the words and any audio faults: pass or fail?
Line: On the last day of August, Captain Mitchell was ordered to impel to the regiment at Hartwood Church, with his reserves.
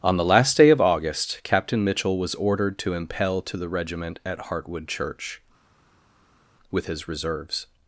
pass